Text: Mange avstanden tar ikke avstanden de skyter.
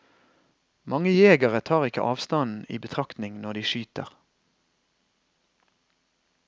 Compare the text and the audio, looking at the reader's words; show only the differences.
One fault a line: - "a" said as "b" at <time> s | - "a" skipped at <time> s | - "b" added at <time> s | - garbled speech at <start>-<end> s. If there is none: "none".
- "avstanden" said as "jegere" at 1.1 s
- "i betraktning når" added at 2.7 s